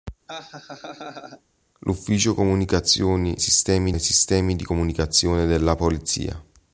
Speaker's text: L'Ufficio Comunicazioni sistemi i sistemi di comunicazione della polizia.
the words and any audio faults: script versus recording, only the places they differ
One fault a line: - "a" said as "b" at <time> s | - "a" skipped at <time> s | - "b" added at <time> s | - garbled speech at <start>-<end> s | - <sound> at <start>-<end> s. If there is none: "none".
- laugh at 0.3-1.4 s